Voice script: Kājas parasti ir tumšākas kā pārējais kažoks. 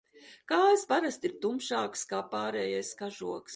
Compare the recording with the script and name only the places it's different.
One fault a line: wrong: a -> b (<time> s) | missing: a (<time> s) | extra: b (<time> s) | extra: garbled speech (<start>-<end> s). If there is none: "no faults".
no faults